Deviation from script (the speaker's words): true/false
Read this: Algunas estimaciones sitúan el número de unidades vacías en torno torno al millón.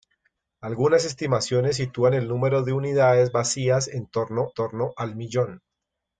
false